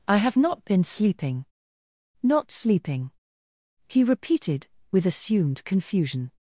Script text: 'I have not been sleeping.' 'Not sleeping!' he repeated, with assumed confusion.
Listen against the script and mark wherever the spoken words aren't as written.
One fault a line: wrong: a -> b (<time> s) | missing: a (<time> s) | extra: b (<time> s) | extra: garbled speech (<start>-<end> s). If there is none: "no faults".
no faults